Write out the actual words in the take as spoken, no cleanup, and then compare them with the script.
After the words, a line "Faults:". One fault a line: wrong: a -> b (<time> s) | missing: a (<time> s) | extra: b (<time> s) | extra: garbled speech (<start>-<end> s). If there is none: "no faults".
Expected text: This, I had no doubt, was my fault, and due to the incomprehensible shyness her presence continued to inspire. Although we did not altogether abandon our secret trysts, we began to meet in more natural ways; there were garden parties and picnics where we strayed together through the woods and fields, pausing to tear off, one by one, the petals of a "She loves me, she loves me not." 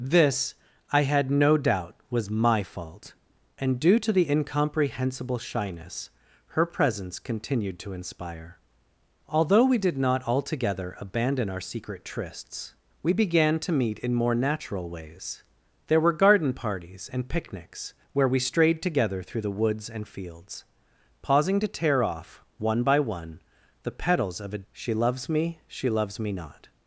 This, I had no doubt, was my fault, and due to the incomprehensible shyness her presence continued to inspire. Although we did not altogether abandon our secret trysts, we began to meet in more natural ways; there were garden parties and picnics where we strayed together through the woods and fields, pausing to tear off, one by one, the petals of a "She loves me, she loves me not."
Faults:
no faults